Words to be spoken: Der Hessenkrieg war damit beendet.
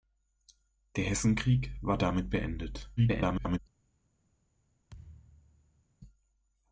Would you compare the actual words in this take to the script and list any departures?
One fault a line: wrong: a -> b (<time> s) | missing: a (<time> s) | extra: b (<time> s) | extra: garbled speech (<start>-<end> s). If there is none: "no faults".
extra: garbled speech (3.0-3.6 s)